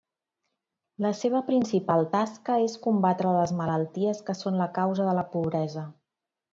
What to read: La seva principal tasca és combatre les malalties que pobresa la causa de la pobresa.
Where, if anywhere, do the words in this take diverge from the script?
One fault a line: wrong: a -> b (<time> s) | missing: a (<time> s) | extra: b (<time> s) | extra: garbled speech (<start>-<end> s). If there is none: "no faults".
wrong: pobresa -> són (4.4 s)